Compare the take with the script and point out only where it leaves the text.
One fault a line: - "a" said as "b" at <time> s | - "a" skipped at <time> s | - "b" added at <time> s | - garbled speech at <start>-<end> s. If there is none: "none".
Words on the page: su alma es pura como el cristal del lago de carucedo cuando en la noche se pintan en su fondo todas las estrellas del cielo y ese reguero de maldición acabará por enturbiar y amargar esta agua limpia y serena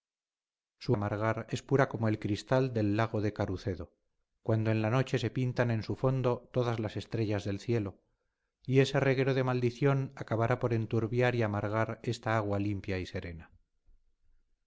- "alma" said as "amargar" at 0.9 s